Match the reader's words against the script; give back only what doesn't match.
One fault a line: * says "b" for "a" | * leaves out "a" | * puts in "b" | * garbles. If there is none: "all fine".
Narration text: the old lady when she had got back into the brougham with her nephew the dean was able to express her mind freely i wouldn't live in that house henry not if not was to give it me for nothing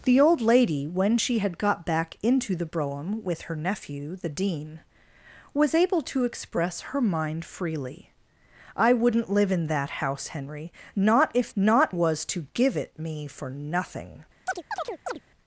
all fine